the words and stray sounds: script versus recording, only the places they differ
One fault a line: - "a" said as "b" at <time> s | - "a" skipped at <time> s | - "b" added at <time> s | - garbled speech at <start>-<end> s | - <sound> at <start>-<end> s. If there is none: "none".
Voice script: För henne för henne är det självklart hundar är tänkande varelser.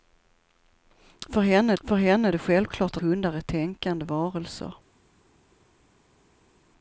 none